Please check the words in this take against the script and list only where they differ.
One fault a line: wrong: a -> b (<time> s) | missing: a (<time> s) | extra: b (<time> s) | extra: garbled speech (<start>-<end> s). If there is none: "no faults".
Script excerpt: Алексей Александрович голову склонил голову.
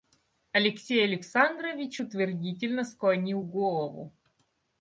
wrong: голову -> утвердительно (2.0 s)